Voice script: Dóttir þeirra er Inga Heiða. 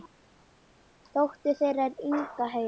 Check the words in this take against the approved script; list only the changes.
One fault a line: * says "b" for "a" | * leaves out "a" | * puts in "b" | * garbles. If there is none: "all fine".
all fine